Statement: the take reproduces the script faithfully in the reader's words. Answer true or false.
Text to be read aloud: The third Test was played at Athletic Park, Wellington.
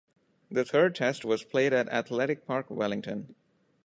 true